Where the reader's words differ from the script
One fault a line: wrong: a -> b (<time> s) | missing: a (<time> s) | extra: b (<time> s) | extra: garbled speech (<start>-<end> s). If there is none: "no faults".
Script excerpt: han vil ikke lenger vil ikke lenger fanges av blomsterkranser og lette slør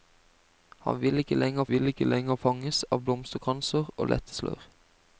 no faults